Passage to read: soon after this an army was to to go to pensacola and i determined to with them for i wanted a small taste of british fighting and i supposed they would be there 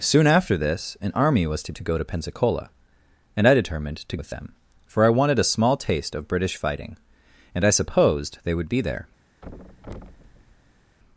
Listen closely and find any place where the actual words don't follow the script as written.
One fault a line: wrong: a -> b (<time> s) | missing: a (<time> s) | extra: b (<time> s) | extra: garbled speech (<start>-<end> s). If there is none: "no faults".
no faults